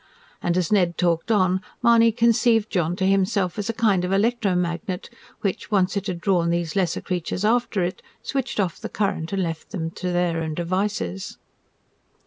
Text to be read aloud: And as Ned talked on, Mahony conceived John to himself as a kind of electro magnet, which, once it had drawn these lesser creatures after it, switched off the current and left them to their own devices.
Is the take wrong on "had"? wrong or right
right